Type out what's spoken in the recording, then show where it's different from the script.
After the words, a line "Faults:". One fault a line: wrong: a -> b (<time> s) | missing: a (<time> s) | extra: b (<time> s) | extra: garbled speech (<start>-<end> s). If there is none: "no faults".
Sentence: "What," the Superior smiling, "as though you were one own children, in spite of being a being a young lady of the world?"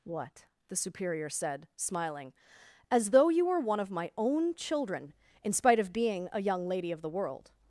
"What," the Superior said, smiling, "as though you were one of my own children, in spite of being a young lady of the world?"
Faults:
extra: said (1.3 s)
extra: of my (3.8 s)
missing: being a (6.4 s)